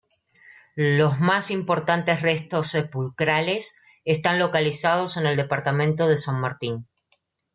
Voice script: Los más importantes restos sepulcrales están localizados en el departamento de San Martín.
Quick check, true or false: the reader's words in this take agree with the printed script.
true